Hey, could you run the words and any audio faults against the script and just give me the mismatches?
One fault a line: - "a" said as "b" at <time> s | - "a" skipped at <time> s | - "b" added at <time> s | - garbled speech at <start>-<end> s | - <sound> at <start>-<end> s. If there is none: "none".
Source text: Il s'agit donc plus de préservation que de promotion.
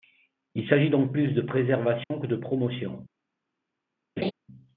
- dropout at 2.0-2.1 s
- laugh at 4.2-4.3 s